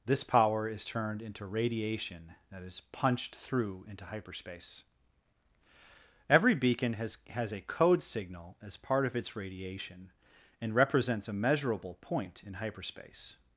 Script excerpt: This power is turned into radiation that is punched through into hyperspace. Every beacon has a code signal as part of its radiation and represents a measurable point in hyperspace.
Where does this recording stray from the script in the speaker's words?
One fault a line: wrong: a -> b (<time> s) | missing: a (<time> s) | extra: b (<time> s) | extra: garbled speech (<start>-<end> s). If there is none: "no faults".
extra: has (7.3 s)